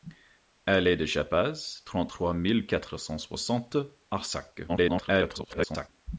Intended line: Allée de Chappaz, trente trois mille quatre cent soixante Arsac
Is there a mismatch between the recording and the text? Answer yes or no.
yes